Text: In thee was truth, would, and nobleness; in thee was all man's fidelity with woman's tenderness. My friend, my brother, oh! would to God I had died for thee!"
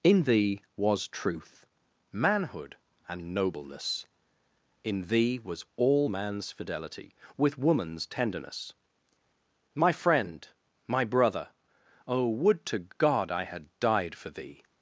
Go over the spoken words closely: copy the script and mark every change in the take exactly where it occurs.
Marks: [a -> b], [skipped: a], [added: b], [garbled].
In thee was truth, [would, -> manhood] and nobleness; in thee was all man's fidelity with woman's tenderness. My friend, my brother, oh! would to God I had died for thee!"